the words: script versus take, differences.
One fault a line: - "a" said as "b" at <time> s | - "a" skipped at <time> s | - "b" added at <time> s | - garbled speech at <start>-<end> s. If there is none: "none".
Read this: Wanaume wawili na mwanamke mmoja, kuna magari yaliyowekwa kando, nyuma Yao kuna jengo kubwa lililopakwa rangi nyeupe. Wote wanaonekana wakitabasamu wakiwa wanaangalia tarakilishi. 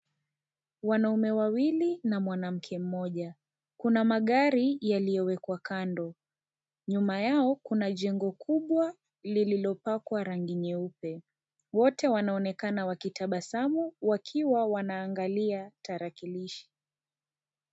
none